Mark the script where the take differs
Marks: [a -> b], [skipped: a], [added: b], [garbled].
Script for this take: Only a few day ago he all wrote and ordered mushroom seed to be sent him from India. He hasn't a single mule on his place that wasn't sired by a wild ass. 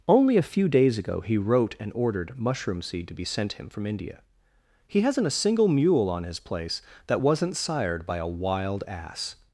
Only a few [day -> days] ago he [skipped: all] wrote and ordered mushroom seed to be sent him from India. He hasn't a single mule on his place that wasn't sired by a wild ass.